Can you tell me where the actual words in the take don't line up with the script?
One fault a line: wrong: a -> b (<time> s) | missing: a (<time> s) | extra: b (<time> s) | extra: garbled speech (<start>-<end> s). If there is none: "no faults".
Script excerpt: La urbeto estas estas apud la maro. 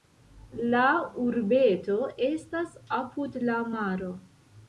missing: estas (2.7 s)